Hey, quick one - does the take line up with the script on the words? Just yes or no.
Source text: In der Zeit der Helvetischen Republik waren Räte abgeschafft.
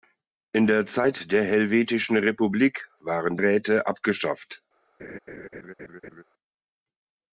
yes